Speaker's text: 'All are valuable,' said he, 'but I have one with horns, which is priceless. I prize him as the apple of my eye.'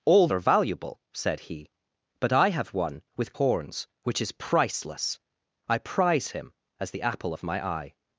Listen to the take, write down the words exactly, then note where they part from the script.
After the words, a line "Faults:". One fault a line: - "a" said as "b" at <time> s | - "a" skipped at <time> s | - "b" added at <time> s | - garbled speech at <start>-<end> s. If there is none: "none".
'All are valuable,' said he, 'but I have one with horns, which is priceless. I prize him as the apple of my eye.'
Faults:
none